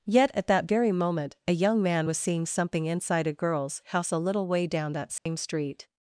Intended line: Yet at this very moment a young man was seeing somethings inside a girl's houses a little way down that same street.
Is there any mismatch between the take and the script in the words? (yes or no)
yes